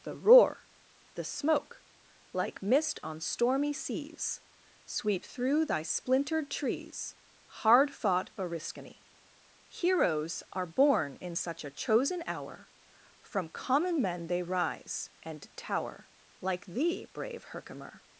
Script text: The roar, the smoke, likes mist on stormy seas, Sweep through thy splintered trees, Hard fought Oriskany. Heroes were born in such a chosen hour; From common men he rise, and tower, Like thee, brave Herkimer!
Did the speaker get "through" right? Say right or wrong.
right